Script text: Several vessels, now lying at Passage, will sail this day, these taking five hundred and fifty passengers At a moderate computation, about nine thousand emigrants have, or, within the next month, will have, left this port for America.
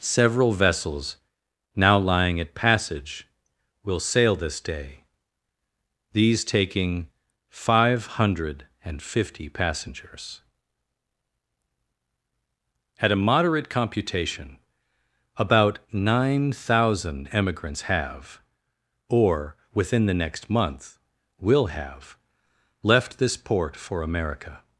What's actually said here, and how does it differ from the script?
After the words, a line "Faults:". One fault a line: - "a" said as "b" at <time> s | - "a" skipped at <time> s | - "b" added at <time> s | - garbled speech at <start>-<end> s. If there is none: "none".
Several vessels, now lying at Passage, will sail this day, these taking five hundred and fifty passengers At a moderate computation, about nine thousand emigrants have, or, within the next month, will have, left this port for America.
Faults:
none